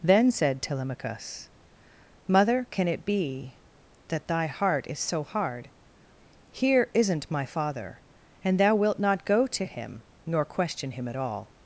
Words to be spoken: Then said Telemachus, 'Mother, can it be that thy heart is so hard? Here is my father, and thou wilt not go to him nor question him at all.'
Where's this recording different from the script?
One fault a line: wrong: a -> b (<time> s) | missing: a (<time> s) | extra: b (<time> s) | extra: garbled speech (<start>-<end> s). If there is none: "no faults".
wrong: is -> isn't (6.9 s)